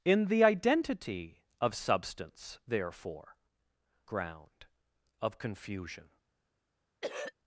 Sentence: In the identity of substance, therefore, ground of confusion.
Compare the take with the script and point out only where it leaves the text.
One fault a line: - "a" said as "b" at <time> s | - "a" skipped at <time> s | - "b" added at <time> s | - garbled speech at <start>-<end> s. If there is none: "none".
none